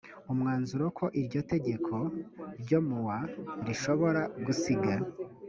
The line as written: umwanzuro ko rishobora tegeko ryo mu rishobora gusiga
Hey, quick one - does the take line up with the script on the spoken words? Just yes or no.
no